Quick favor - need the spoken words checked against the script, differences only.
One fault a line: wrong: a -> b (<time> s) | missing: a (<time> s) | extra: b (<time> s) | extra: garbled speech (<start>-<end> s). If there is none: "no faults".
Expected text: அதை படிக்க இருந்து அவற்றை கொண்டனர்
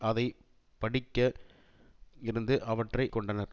no faults